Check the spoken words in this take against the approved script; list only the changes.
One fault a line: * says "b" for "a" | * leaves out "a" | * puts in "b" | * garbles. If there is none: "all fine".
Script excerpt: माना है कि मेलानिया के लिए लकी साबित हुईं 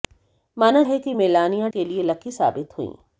all fine